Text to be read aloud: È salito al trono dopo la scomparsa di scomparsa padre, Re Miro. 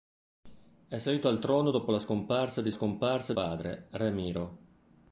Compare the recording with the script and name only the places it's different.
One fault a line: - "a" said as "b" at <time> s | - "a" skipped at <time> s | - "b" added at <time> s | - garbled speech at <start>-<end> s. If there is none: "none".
none